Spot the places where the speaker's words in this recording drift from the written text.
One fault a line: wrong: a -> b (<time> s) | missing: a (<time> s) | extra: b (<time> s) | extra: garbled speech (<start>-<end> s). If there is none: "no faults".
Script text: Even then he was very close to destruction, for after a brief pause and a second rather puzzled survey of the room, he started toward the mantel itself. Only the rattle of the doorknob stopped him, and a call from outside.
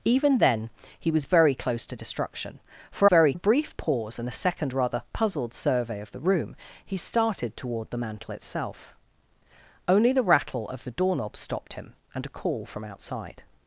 wrong: after -> very (3.0 s)